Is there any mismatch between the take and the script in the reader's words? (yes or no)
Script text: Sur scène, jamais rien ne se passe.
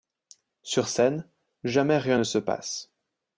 no